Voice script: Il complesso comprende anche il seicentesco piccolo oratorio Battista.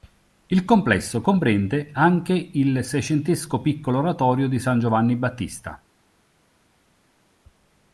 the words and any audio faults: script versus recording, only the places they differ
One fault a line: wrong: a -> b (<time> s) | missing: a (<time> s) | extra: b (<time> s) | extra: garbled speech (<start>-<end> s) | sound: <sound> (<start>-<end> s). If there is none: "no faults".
extra: di San Giovanni (4.5 s)